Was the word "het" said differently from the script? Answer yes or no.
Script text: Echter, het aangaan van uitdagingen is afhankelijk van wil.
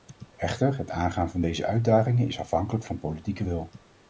no